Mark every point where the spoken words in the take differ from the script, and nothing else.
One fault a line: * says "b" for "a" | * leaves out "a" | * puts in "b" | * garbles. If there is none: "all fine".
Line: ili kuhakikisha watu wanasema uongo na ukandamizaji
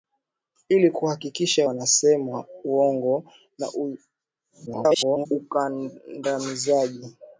* leaves out "watu"
* garbles